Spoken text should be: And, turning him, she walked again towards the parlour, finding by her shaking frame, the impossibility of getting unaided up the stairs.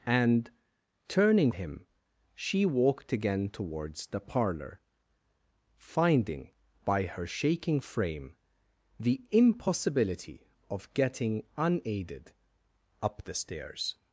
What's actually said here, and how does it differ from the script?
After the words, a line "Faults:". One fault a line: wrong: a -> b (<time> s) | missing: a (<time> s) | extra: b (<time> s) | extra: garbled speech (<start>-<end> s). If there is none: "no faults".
And, turning him, she walked again towards the parlour, finding by her shaking frame, the impossibility of getting unaided up the stairs.
Faults:
no faults